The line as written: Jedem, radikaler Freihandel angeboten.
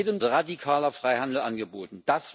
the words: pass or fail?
pass